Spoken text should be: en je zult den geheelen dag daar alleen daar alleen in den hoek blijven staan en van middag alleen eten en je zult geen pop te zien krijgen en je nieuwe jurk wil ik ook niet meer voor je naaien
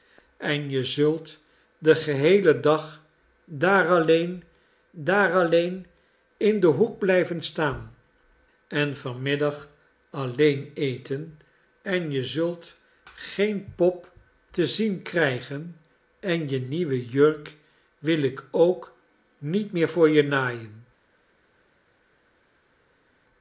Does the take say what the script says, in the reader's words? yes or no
yes